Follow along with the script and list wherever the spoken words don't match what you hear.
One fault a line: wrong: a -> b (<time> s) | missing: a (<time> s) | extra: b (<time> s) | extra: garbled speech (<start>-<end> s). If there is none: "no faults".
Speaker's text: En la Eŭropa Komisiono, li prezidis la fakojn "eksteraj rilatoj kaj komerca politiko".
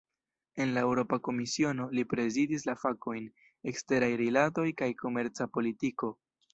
no faults